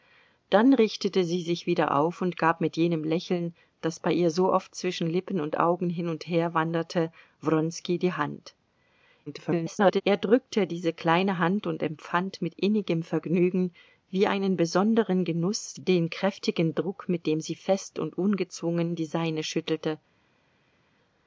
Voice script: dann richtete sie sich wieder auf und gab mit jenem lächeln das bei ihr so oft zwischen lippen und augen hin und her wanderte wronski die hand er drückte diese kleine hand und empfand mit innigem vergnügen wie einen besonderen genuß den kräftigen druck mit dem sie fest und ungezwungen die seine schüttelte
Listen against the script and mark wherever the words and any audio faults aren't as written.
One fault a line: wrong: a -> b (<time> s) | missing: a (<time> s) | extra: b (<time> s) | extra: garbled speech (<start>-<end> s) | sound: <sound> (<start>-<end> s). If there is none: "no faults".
extra: garbled speech (9.3-10.0 s)